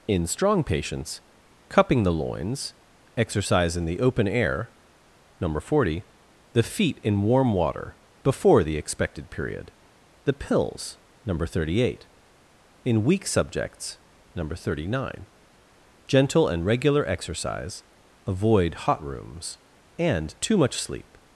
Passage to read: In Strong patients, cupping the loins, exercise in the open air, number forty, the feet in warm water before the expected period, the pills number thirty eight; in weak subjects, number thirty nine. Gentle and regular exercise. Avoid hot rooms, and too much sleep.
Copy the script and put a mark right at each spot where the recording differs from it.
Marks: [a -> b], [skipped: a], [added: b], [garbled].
In Strong patients, cupping the loins, exercise in the open air, number forty, the feet in warm water before the expected period, the pills number thirty eight; in weak subjects, number thirty nine. Gentle and regular exercise. Avoid hot rooms, and too much sleep.